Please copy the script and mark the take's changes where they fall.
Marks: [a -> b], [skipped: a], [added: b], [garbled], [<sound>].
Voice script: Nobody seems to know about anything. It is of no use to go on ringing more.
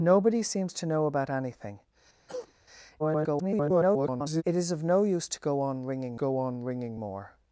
Nobody seems to know about anything. [cough] [garbled] It is of no use to go on ringing [added: go on ringing] more.